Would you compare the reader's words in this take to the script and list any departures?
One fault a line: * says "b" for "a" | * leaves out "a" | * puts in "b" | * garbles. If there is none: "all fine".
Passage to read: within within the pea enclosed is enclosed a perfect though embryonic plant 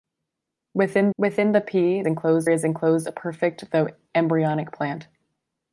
all fine